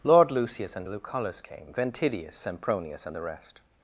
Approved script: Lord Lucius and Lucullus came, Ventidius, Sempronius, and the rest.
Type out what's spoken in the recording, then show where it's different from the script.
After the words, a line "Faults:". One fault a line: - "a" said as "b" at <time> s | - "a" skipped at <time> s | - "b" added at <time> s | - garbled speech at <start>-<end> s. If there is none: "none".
Lord Lucius and Lucullus came, Ventidius, Sempronius, and the rest.
Faults:
none